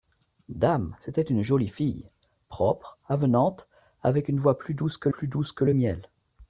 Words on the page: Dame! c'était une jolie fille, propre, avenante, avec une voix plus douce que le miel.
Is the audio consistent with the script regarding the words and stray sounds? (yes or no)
no